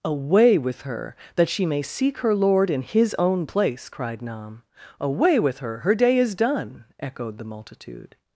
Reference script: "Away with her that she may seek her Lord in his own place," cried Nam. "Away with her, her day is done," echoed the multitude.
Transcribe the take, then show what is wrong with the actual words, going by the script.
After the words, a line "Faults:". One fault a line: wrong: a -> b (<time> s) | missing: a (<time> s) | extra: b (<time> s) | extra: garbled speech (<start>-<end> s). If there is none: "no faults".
"Away with her that she may seek her Lord in his own place," cried Nam. "Away with her, her day is done," echoed the multitude.
Faults:
no faults